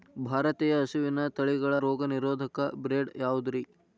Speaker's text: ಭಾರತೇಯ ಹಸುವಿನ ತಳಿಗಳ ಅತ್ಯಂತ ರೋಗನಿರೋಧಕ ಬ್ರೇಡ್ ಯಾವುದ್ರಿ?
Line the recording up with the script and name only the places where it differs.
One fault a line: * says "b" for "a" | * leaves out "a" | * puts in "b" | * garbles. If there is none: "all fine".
* leaves out "ಅತ್ಯಂತ"